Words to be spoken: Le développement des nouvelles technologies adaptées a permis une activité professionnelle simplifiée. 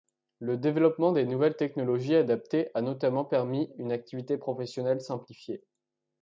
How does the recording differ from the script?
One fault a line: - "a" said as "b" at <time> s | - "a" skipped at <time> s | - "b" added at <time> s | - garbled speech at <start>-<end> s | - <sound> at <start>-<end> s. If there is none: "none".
- "notamment" added at 2.8 s